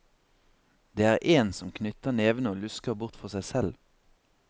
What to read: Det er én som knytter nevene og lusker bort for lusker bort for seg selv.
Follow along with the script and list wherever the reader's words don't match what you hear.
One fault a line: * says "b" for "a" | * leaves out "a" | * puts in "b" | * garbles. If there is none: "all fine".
* leaves out "lusker bort for"